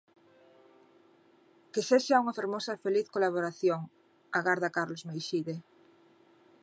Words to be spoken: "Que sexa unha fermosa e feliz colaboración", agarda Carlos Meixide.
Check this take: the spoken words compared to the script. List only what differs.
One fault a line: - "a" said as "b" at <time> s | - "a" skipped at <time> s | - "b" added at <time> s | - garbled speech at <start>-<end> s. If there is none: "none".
none